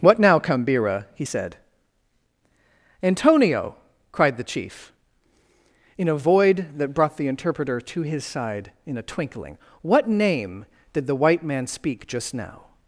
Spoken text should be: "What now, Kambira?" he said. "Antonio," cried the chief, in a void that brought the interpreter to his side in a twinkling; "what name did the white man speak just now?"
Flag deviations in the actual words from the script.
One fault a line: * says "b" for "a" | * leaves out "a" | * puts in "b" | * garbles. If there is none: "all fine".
all fine